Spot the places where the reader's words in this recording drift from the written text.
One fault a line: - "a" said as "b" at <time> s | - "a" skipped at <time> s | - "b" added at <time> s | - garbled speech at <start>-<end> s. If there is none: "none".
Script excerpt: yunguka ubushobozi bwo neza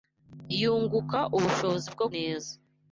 none